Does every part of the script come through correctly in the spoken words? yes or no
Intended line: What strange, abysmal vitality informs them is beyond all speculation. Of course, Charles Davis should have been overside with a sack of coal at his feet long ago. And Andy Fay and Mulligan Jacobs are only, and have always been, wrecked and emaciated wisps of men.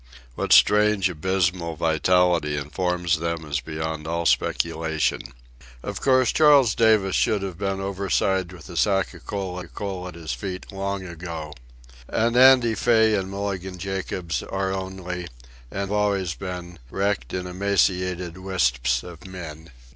no